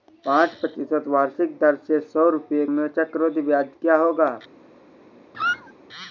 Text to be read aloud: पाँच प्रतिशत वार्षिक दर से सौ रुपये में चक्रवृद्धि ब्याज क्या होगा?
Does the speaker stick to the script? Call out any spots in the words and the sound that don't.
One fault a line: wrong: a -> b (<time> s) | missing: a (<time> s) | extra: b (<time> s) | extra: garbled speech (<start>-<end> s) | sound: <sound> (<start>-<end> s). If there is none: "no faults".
sound: squeak (5.3-5.7 s)